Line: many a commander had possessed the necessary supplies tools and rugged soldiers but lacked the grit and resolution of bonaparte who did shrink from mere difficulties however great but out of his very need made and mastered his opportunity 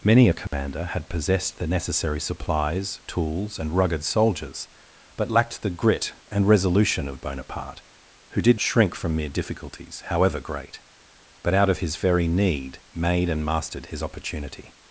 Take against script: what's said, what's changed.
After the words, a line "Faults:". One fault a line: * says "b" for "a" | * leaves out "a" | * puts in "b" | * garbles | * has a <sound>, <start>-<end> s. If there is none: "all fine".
many a commander had possessed the necessary supplies tools and rugged soldiers but lacked the grit and resolution of bonaparte who did shrink from mere difficulties however great but out of his very need made and mastered his opportunity
Faults:
* has a dropout, 0.5-0.5 s